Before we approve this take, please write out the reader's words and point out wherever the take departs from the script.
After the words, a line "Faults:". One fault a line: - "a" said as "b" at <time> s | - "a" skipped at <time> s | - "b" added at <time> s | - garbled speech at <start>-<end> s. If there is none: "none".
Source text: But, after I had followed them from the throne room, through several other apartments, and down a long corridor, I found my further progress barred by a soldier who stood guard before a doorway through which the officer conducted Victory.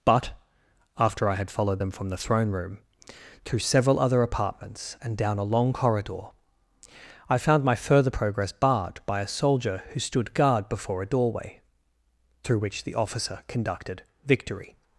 But, after I had followed them from the throne room, through several other apartments, and down a long corridor, I found my further progress barred by a soldier who stood guard before a doorway through which the officer conducted Victory.
Faults:
none